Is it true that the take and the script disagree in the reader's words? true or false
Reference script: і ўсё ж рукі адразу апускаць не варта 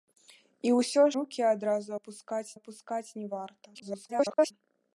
true